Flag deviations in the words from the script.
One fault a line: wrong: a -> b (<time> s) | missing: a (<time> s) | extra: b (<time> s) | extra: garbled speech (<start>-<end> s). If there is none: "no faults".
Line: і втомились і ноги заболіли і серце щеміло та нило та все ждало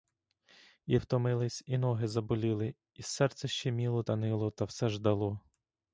no faults